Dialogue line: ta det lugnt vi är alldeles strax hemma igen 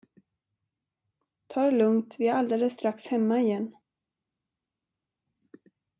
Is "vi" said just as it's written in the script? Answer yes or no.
yes